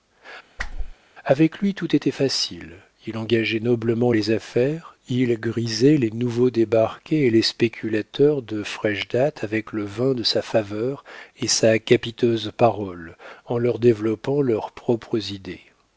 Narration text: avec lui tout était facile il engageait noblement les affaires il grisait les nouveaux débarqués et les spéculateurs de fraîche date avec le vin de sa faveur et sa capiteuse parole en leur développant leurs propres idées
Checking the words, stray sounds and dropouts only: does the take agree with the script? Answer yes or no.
no